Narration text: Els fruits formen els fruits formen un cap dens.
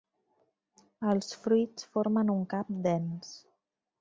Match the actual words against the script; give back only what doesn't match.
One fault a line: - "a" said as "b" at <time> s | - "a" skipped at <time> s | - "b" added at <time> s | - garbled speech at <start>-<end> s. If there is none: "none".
- "els fruits formen" skipped at 2.3 s